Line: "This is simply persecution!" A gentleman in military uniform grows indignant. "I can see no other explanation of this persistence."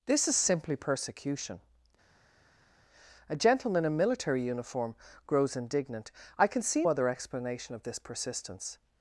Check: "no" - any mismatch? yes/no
yes